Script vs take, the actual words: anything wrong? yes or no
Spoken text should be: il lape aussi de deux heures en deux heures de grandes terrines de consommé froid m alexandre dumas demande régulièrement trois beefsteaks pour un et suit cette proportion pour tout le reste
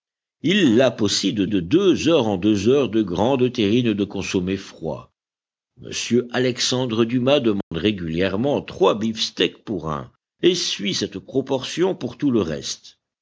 yes